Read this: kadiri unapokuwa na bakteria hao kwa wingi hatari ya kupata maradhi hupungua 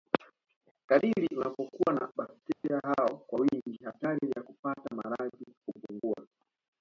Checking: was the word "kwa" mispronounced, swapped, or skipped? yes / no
no